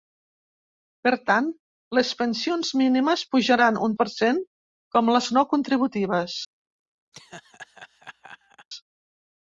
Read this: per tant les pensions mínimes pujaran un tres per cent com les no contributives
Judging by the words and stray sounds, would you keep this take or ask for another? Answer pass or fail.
fail